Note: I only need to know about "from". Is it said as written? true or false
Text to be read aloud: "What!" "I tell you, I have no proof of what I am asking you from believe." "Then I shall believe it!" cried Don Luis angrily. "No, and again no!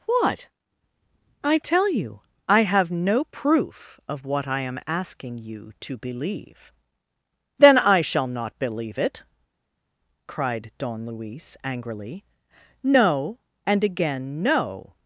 false